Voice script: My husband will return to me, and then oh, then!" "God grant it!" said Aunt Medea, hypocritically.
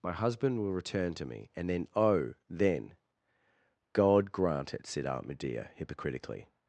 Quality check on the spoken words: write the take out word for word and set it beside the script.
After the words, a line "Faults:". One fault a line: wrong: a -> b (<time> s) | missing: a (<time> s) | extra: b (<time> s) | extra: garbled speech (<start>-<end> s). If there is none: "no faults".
My husband will return to me, and then oh, then!" "God grant it!" said Aunt Medea, hypocritically.
Faults:
no faults